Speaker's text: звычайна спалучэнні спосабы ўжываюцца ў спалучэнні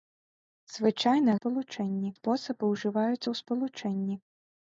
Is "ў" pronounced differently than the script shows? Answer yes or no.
no